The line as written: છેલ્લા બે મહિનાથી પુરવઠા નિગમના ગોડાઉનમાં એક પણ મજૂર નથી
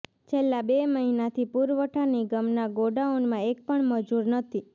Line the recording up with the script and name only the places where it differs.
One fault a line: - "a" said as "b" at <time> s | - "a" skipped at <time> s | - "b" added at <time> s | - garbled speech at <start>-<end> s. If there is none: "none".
none